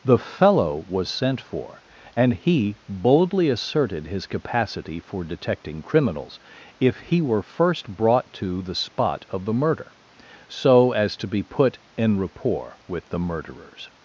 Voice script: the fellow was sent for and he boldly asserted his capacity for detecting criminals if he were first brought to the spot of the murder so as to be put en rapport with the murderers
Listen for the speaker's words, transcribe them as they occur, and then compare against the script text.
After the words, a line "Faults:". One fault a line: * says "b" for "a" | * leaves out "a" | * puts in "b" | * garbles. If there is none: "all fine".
the fellow was sent for and he boldly asserted his capacity for detecting criminals if he were first brought to the spot of the murder so as to be put en rapport with the murderers
Faults:
all fine